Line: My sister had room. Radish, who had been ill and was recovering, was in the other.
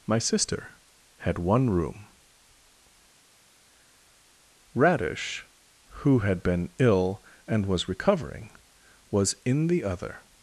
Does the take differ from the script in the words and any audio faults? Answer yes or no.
yes